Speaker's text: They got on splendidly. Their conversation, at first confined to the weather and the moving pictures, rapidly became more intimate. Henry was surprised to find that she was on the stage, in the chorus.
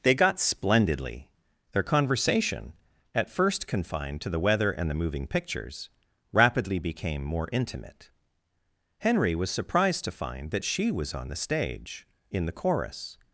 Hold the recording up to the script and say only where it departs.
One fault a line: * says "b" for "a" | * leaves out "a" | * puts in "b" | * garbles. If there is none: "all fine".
* leaves out "on"